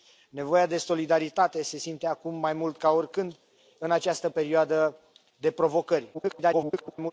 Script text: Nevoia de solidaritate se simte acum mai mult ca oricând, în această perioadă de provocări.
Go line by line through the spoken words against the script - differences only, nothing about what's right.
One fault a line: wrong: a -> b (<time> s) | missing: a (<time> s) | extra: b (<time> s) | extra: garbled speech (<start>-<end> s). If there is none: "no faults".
extra: garbled speech (6.1-7.1 s)